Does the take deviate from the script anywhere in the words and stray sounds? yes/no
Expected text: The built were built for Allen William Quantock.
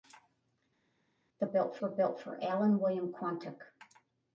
no